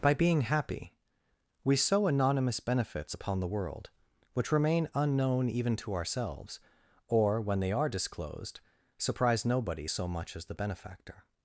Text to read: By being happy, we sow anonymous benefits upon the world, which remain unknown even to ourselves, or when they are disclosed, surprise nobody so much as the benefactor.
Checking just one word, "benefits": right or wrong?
right